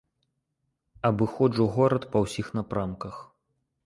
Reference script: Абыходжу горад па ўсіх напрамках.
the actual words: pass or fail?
pass